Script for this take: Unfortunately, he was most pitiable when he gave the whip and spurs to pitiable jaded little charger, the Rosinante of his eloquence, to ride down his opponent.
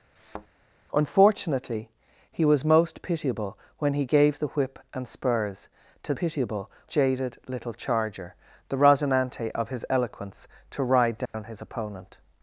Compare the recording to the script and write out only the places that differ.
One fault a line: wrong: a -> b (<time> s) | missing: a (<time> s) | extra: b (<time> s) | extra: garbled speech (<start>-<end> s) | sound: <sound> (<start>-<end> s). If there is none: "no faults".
sound: thud (0.2-0.5 s)
sound: dropout (11.3-11.3 s)